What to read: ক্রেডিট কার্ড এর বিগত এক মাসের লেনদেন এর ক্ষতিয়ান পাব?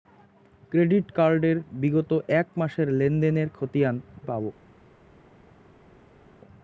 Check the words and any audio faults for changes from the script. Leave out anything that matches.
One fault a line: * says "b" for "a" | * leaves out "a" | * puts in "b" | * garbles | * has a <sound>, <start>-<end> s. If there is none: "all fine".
all fine